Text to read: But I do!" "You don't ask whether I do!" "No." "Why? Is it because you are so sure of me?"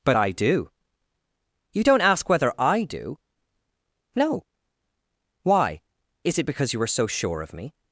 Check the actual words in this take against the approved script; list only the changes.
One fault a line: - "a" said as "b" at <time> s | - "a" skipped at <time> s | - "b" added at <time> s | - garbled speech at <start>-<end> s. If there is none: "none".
none